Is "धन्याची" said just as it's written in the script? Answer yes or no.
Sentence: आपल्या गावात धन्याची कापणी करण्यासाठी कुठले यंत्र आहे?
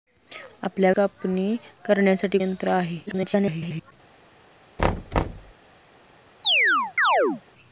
no